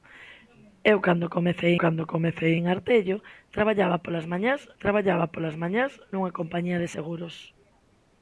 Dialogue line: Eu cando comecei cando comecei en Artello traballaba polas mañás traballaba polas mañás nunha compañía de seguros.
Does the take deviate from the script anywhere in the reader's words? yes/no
no